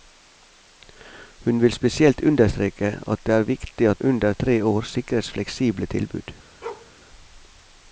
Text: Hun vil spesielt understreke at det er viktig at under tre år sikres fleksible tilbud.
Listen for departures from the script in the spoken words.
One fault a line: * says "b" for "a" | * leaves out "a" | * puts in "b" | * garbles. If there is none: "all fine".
all fine